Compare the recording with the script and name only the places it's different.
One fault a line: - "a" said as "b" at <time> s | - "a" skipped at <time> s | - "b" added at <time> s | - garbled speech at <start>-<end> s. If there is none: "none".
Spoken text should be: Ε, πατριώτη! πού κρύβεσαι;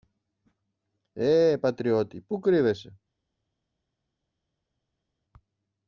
none